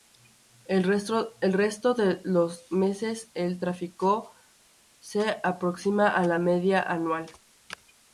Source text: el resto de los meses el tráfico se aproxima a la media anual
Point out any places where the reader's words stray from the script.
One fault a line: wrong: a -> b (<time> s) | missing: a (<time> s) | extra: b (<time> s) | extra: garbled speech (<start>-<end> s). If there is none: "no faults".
no faults